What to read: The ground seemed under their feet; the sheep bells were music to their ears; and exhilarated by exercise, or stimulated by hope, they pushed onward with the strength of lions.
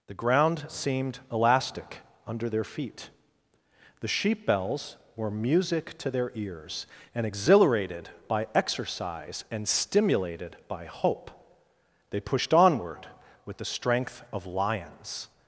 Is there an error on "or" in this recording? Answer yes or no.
yes